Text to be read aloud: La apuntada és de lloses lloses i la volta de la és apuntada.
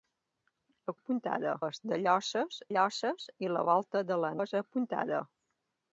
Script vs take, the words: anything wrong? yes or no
no